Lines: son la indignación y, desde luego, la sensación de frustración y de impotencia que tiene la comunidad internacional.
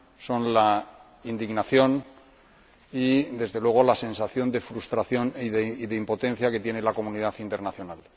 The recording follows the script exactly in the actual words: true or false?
true